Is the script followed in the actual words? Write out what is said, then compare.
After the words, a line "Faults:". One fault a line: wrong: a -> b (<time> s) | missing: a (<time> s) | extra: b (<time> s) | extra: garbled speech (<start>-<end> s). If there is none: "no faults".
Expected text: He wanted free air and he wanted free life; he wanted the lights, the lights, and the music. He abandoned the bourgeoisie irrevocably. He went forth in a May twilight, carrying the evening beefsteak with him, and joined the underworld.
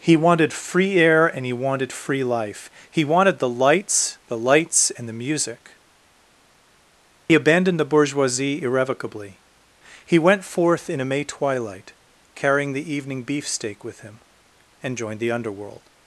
He wanted free air and he wanted free life; he wanted the lights, the lights, and the music. He abandoned the bourgeoisie irrevocably. He went forth in a May twilight, carrying the evening beefsteak with him, and joined the underworld.
Faults:
no faults